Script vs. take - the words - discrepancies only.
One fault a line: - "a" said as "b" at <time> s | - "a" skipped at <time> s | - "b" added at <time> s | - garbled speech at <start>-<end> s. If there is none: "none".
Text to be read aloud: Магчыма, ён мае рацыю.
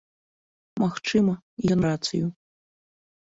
- "мае" skipped at 1.8 s